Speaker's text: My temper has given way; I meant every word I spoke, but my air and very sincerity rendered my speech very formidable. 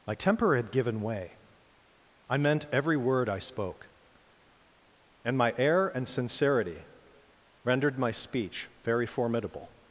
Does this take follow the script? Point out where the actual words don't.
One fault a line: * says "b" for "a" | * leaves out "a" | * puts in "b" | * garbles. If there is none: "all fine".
* says "had" for "has"
* says "and" for "but"
* leaves out "very"